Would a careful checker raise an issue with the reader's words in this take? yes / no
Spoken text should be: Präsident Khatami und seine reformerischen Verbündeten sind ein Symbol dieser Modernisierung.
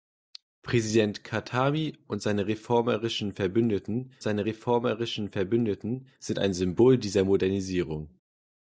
yes